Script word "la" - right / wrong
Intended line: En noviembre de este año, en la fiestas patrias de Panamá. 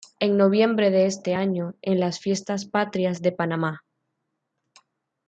wrong